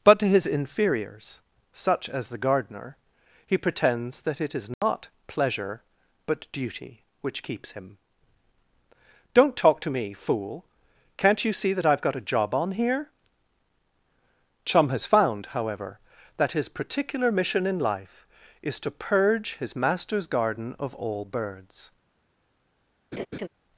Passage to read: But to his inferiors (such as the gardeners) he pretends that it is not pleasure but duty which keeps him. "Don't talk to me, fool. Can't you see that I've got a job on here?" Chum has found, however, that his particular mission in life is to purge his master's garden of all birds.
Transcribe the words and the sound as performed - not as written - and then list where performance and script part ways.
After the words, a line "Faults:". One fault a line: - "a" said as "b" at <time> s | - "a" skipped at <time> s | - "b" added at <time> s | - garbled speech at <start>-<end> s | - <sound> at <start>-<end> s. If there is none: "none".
But to his inferiors (such as the gardener) he pretends that it is not pleasure but duty which keeps him. "Don't talk to me, fool. Can't you see that I've got a job on here?" Chum has found, however, that his particular mission in life is to purge his master's garden of all birds.
Faults:
- "gardeners" said as "gardener" at 2.4 s
- dropout at 4.7-4.8 s
- laugh at 23.1-23.5 s